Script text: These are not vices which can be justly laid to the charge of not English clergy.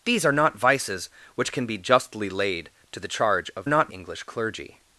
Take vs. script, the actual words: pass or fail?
pass